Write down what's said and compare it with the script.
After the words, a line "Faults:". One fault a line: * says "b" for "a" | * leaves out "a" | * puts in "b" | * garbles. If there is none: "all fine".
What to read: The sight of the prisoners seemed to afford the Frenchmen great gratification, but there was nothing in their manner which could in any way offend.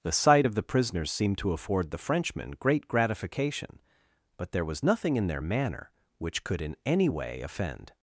The sight of the prisoners seemed to afford the Frenchmen great gratification, but there was nothing in their manner which could in any way offend.
Faults:
all fine